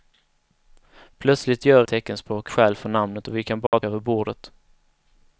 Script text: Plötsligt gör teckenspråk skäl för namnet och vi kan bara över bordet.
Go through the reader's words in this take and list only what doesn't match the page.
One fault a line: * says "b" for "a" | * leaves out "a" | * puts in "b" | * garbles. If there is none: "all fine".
all fine